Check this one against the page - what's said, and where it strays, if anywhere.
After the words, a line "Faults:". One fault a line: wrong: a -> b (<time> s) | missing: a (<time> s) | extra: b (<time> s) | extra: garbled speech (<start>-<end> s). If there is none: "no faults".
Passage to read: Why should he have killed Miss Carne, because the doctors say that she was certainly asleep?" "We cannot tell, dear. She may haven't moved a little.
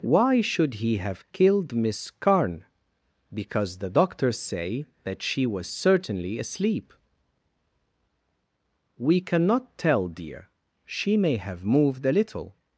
Why should he have killed Miss Carne, because the doctors say that she was certainly asleep?" "We cannot tell, dear. She may have moved a little.
Faults:
wrong: haven't -> have (11.3 s)